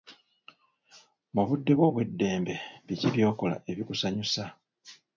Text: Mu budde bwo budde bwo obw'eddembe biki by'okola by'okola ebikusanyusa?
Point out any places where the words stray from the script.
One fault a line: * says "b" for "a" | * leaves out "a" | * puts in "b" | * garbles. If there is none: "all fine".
* leaves out "budde bwo"
* leaves out "by'okola"